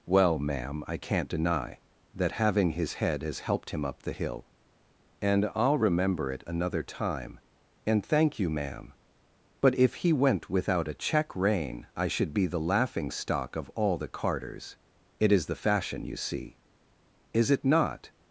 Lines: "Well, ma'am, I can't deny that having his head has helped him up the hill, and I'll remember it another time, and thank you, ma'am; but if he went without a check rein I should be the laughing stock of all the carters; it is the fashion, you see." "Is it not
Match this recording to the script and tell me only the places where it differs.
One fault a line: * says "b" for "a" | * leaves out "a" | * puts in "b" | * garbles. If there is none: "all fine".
all fine